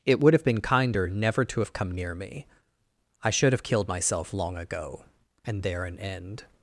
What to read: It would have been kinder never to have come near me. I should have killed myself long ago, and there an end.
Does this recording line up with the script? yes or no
yes